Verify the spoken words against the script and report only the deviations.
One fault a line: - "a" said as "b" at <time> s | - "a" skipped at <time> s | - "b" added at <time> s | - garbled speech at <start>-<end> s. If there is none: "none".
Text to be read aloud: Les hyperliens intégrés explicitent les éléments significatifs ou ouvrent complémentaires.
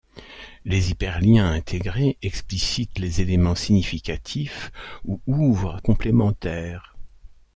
none